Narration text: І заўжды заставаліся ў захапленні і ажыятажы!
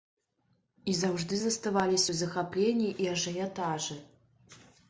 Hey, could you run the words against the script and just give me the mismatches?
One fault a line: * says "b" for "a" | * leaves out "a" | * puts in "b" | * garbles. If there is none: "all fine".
all fine